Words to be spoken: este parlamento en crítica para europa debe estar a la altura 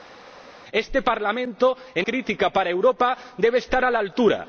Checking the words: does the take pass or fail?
pass